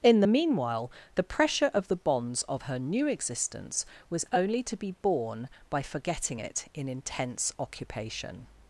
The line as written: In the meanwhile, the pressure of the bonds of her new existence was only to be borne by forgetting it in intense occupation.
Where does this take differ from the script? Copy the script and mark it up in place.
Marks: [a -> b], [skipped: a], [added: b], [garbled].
In the meanwhile, the pressure of the bonds of her new existence was only to be borne by forgetting it in intense occupation.